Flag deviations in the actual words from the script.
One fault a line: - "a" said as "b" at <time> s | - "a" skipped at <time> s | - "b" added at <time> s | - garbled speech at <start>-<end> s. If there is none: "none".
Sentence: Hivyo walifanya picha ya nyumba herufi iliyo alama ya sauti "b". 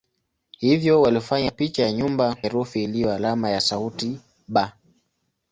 none